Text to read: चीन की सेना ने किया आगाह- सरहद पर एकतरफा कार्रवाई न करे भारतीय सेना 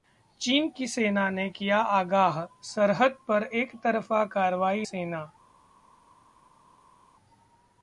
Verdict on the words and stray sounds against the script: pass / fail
fail